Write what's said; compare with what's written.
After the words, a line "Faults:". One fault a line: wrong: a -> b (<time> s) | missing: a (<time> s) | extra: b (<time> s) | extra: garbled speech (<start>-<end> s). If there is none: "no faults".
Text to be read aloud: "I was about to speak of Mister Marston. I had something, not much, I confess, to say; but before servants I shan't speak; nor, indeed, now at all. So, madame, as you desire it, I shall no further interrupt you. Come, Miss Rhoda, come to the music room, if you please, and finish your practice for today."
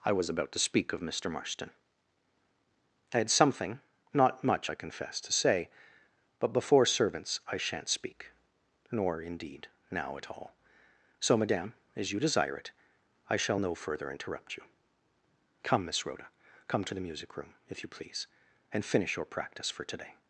"I was about to speak of Mister Marston. I had something, not much, I confess, to say; but before servants I shan't speak; nor, indeed, now at all. So, madame, as you desire it, I shall no further interrupt you. Come, Miss Rhoda, come to the music room, if you please, and finish your practice for today."
Faults:
no faults